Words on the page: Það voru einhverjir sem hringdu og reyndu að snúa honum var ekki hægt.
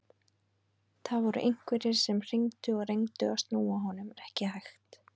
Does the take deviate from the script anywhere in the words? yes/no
no